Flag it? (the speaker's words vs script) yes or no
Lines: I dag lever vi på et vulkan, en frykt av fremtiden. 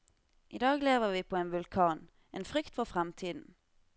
yes